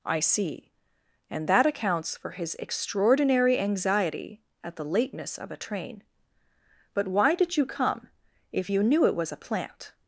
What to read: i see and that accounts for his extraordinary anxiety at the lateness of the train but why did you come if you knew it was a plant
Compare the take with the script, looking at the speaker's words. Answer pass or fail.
fail